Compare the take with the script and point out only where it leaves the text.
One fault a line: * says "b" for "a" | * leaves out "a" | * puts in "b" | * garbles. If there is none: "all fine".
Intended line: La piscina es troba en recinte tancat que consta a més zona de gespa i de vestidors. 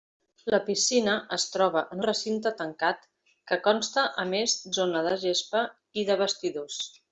all fine